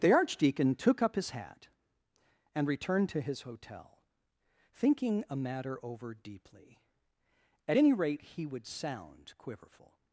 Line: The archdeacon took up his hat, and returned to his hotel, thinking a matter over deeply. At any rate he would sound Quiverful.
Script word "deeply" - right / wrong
right